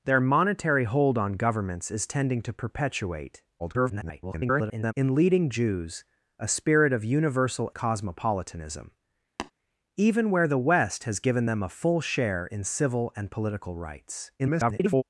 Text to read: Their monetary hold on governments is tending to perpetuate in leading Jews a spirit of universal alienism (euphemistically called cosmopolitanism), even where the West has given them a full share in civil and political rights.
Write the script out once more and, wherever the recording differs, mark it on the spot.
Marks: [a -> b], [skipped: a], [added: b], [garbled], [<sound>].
Their monetary hold on governments is tending to perpetuate [garbled] in leading Jews a spirit of universal [skipped: alienism (euphemistically called] cosmopolitanism), [tap] even where the West has given them a full share in civil and political rights. [garbled]